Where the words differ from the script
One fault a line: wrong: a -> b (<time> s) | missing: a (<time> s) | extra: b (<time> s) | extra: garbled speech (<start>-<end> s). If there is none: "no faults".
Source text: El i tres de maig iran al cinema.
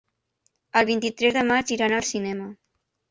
extra: vint (0.9 s)